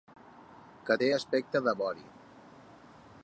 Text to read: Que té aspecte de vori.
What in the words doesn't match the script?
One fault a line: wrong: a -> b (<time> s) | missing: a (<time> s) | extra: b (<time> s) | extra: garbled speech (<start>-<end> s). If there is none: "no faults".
no faults